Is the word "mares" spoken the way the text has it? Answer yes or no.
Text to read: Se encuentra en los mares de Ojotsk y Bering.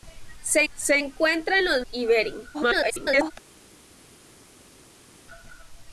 no